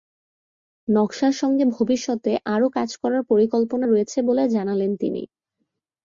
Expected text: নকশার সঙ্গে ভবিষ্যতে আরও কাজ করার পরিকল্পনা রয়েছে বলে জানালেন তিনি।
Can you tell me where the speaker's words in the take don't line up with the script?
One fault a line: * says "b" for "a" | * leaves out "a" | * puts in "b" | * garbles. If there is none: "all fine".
all fine